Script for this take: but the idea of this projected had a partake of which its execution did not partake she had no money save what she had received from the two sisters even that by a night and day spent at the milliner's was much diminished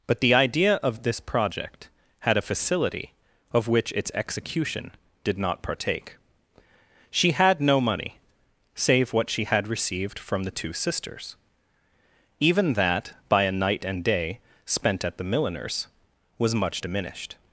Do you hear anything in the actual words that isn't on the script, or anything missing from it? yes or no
yes